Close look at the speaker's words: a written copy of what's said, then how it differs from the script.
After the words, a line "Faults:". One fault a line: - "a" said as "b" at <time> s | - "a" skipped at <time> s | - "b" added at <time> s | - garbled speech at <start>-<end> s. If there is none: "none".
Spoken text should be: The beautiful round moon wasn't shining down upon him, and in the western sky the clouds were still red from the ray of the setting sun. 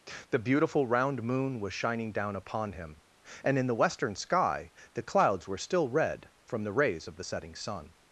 The beautiful round moon was shining down upon him, and in the western sky the clouds were still red from the rays of the setting sun.
Faults:
- "wasn't" said as "was" at 1.6 s
- "ray" said as "rays" at 6.7 s